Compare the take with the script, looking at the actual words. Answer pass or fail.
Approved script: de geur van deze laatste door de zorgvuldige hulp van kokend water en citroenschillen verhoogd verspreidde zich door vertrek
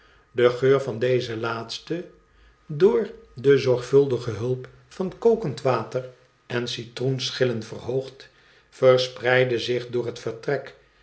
fail